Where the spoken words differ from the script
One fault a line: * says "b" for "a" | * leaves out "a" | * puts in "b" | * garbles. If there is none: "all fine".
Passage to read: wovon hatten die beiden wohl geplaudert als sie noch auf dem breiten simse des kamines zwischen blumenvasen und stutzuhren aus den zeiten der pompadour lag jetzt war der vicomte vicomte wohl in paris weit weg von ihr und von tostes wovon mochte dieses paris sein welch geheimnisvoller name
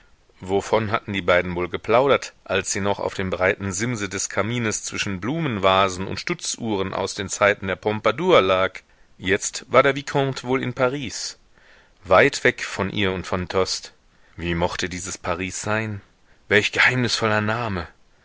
* leaves out "vicomte"
* says "wie" for "wovon"